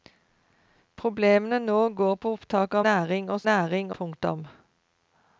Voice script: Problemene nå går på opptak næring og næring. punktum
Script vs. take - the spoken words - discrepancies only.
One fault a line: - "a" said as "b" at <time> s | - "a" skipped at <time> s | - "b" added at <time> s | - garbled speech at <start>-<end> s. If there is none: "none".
none